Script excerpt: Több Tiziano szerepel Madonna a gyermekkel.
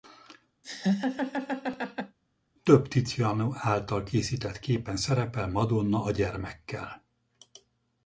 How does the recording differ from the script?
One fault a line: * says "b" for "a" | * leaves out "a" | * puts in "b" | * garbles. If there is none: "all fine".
* puts in "által készített képen"